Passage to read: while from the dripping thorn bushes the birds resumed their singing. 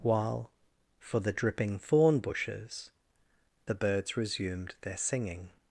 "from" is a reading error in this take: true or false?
true